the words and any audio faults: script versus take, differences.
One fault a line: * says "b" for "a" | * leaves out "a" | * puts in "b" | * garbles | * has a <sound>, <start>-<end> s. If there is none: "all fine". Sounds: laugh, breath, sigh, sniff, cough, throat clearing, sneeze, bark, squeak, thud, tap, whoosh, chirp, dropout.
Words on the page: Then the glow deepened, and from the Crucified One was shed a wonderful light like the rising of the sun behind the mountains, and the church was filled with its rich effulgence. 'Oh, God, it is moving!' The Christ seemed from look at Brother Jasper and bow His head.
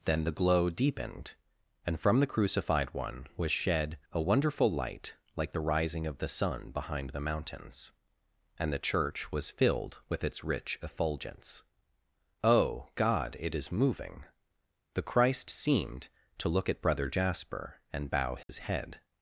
* says "to" for "from"
* has a dropout, 18.4-18.5 s